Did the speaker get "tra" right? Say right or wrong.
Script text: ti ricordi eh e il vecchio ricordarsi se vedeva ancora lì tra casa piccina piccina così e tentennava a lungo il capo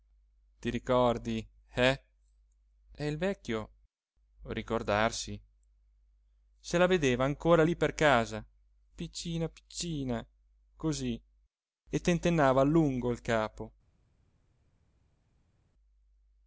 wrong